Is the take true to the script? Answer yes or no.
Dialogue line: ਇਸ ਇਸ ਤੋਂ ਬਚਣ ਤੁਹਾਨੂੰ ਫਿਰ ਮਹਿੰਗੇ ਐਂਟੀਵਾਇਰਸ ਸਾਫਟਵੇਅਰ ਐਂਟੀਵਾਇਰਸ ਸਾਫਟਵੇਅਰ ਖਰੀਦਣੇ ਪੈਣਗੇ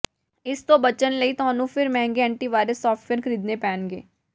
no